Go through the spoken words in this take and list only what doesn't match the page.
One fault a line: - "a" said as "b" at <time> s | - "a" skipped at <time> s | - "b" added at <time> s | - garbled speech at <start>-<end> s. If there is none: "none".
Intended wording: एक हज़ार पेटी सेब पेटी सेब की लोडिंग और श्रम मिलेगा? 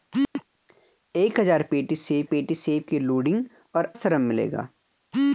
none